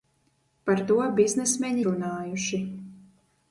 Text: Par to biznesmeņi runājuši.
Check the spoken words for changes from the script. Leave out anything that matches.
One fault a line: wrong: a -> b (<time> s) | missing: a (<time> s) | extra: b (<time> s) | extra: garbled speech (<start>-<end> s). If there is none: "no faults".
no faults